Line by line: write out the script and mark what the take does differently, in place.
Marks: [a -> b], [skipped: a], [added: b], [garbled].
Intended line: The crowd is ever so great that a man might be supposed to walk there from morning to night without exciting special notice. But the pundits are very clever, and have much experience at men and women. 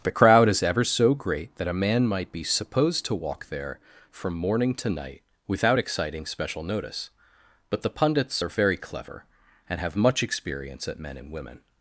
The crowd is ever so great that a man might be supposed to walk there from morning to night without exciting special notice. But the pundits are very clever, and have much experience at men and women.